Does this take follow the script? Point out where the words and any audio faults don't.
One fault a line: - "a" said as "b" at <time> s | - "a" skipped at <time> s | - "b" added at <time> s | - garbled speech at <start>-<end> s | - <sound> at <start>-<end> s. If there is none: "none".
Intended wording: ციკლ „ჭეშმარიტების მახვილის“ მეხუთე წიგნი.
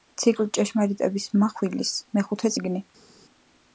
none